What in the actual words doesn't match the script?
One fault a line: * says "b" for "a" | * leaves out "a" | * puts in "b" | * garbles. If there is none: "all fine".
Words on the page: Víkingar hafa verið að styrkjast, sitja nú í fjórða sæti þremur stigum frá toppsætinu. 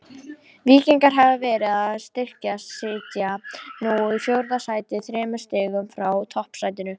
all fine